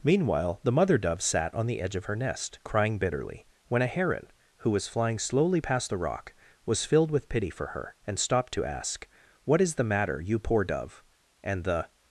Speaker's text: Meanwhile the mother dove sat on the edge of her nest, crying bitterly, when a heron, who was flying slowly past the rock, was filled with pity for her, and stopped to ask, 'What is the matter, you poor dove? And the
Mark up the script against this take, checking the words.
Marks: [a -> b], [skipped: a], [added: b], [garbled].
Meanwhile the mother dove sat on the edge of her nest, crying bitterly, when a heron, who was flying slowly past the rock, was filled with pity for her, and stopped to ask, 'What is the matter, you poor dove? And the